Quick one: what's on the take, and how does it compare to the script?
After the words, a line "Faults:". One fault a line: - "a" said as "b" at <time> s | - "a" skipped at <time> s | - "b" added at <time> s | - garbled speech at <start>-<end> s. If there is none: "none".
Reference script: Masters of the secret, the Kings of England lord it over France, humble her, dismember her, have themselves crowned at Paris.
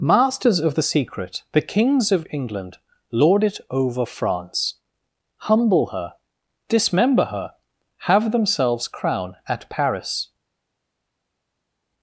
Masters of the secret, the Kings of England lord it over France, humble her, dismember her, have themselves crown at Paris.
Faults:
- "crowned" said as "crown" at 8.9 s